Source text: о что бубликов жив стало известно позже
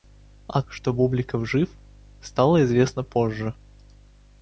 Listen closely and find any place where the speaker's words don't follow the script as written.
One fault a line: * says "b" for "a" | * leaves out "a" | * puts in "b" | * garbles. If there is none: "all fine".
all fine